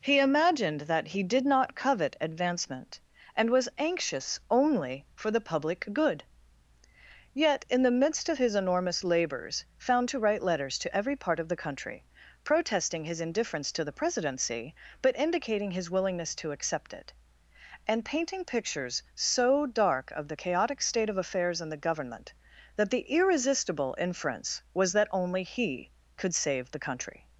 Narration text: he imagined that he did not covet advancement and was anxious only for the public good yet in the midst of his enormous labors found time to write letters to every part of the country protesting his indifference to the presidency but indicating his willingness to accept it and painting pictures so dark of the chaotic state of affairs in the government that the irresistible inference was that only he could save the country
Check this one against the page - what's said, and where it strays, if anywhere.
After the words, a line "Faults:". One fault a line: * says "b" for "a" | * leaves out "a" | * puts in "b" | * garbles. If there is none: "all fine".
he imagined that he did not covet advancement and was anxious only for the public good yet in the midst of his enormous labors found to write letters to every part of the country protesting his indifference to the presidency but indicating his willingness to accept it and painting pictures so dark of the chaotic state of affairs in the government that the irresistible inference was that only he could save the country
Faults:
* leaves out "time"